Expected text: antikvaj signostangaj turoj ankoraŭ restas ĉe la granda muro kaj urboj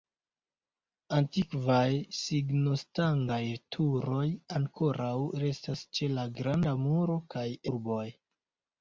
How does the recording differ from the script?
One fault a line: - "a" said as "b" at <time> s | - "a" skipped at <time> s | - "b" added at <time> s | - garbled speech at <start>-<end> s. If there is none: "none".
none